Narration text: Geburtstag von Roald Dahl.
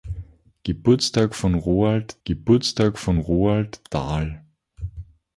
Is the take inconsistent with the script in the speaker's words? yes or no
yes